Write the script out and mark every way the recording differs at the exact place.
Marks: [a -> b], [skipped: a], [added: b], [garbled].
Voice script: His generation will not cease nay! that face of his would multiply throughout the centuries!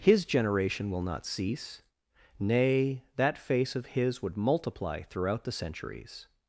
His generation will not cease nay! that face of his would multiply throughout the centuries!